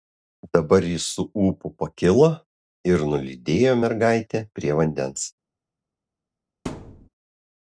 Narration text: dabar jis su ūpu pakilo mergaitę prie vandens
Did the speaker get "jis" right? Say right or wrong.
right